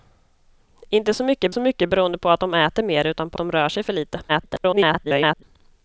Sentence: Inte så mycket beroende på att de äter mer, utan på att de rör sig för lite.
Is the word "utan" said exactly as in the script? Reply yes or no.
yes